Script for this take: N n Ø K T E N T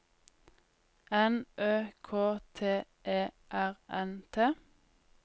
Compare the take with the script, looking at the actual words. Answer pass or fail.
fail